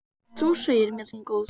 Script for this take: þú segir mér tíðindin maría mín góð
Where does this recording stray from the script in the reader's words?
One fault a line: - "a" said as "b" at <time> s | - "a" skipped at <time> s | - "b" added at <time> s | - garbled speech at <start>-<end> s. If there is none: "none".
- "tíðindin maría" skipped at 1.1 s